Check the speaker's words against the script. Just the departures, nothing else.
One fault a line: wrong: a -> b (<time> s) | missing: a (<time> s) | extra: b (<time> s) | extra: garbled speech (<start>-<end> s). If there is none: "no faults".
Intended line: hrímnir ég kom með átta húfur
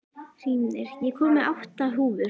no faults